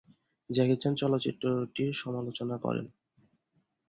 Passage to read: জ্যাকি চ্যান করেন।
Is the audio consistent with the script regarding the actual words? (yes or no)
no